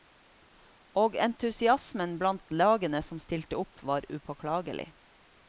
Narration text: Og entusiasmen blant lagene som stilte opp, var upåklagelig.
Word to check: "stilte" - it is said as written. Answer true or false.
true